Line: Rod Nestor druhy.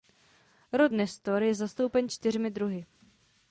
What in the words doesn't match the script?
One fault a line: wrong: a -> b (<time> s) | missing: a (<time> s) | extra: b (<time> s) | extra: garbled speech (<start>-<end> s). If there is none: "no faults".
extra: je zastoupen čtyřmi (1.4 s)